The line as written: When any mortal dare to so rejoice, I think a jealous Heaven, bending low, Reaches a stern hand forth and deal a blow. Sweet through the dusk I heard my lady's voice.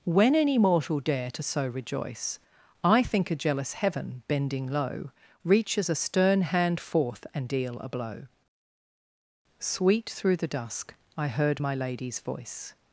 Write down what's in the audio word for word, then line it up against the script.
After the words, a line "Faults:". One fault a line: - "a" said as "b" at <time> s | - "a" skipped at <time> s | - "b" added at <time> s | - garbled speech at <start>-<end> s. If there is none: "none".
When any mortal dare to so rejoice, I think a jealous Heaven, bending low, Reaches a stern hand forth and deal a blow. Sweet through the dusk I heard my lady's voice.
Faults:
none